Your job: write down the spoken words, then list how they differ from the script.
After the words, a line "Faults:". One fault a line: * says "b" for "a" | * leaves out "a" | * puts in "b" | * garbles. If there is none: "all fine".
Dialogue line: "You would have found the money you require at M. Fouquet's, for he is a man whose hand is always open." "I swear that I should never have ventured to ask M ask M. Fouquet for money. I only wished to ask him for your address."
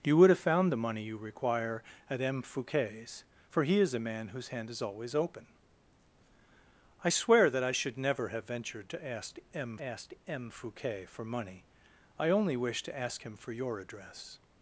"You would have found the money you require at M. Fouquet's, for he is a man whose hand is always open." "I swear that I should never have ventured to ask M ask M. Fouquet for money. I only wished to ask him for your address."
Faults:
all fine